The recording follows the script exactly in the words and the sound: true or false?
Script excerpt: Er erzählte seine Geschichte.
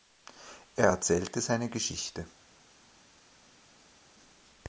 true